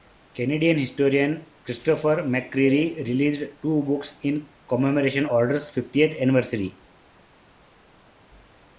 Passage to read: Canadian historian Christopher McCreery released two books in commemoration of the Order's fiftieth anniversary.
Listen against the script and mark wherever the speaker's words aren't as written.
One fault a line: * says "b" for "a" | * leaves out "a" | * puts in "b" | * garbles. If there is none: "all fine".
* leaves out "of the"